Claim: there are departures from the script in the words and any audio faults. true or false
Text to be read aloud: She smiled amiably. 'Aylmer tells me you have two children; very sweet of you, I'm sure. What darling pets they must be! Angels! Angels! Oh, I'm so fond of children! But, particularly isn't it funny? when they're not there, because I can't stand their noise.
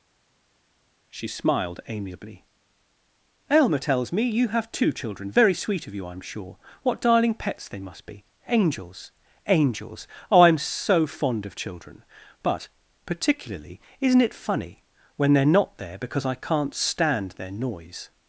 false